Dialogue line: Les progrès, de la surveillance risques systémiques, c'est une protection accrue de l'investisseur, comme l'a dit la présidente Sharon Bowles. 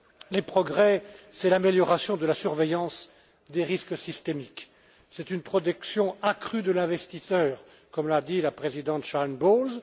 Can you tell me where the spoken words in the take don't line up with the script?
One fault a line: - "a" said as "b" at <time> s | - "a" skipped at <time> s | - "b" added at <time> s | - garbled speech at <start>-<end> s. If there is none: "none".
- "c'est l'amélioration" added at 1.3 s
- "des" added at 3.5 s